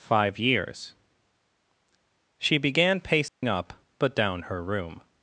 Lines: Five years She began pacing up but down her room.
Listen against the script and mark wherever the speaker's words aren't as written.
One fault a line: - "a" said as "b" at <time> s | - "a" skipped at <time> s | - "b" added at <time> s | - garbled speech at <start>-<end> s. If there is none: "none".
none